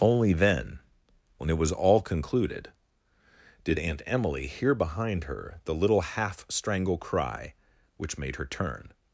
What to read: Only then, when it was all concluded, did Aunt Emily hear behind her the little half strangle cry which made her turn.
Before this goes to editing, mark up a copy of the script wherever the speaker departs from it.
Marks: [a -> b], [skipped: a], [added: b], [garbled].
Only then, when it was all concluded, did Aunt Emily hear behind her the little half strangle cry which made her turn.